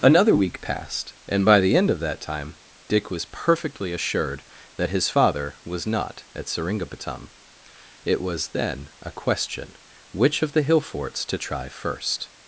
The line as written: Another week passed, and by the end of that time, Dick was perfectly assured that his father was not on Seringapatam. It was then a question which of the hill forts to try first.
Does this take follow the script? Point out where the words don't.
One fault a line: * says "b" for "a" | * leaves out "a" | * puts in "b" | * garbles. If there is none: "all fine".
* says "at" for "on"